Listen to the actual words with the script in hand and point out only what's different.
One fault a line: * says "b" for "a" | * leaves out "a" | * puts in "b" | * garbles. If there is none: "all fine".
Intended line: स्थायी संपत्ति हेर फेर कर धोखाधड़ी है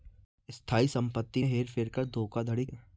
all fine